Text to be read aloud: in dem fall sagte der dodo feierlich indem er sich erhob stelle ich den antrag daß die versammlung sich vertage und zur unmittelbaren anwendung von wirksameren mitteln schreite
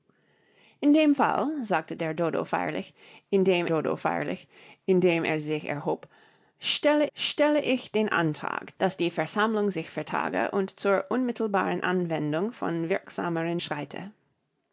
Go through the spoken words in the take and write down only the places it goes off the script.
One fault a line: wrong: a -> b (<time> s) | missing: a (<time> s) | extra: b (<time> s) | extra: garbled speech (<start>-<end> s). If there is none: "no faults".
extra: dodo feierlich indem (3.7 s)
extra: stelle (7.1 s)
missing: mitteln (13.6 s)